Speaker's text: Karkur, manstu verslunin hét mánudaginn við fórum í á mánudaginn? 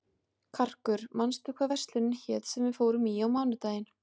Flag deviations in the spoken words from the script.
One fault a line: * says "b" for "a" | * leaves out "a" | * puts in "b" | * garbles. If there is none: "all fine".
* puts in "hvað"
* says "sem" for "mánudaginn"